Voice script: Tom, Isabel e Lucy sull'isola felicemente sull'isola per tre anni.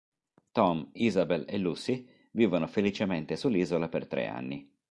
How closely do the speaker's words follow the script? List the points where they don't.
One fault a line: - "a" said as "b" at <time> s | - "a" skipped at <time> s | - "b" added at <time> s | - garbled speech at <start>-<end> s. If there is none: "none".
- "sull'isola" said as "vivono" at 2.3 s